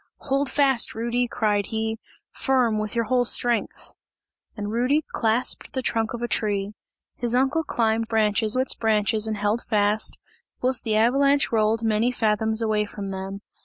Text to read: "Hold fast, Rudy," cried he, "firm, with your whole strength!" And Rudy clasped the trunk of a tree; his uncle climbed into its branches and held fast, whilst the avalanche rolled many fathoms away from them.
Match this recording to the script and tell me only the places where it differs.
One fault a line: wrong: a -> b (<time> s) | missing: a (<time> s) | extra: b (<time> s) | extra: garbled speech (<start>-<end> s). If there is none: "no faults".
wrong: into -> branches (8.0 s)